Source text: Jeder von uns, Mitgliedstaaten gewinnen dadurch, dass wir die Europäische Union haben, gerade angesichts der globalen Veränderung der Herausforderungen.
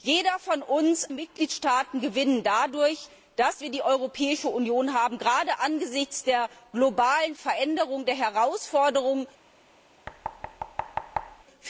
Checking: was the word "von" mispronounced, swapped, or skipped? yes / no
no